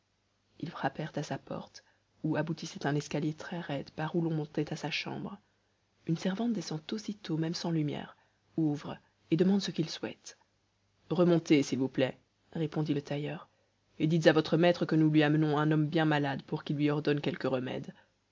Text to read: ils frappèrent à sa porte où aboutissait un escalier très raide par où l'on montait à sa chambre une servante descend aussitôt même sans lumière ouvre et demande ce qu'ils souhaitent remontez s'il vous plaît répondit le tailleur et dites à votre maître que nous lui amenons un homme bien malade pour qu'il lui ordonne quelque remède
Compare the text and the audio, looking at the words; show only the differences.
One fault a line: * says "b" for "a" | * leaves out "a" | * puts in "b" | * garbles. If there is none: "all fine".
all fine